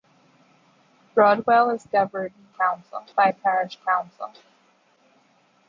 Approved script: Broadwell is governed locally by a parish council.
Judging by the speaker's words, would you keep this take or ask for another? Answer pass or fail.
fail